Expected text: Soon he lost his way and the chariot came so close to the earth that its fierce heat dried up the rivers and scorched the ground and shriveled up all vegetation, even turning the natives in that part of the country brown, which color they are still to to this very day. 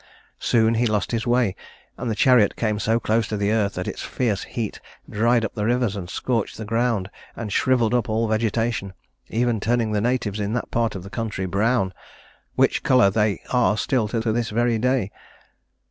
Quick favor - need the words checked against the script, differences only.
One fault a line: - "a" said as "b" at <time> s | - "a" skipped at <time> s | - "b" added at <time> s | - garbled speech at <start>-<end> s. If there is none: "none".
none